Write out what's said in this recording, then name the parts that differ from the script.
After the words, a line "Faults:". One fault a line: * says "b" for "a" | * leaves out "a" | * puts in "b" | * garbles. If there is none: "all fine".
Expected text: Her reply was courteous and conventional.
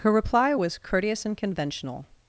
Her reply was courteous and conventional.
Faults:
all fine